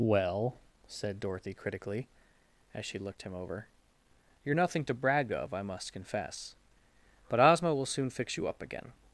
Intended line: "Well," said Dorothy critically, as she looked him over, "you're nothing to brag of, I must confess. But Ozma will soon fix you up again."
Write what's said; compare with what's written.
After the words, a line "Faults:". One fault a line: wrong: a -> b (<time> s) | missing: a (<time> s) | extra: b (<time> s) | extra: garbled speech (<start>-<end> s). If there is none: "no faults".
"Well," said Dorothy critically, as she looked him over, "you're nothing to brag of, I must confess. But Ozma will soon fix you up again."
Faults:
no faults